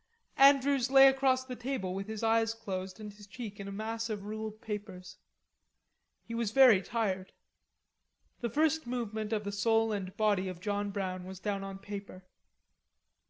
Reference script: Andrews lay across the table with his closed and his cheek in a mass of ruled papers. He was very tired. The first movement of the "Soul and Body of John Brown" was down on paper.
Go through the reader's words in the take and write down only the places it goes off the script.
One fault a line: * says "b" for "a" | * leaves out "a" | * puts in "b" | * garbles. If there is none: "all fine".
* puts in "eyes"